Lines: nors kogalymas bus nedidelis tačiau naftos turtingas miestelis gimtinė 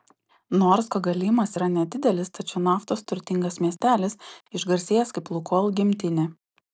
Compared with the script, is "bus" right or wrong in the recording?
wrong